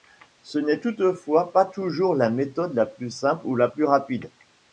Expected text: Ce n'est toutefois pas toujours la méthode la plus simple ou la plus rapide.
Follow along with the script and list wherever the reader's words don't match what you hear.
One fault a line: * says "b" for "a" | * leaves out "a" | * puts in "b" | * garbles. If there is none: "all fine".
all fine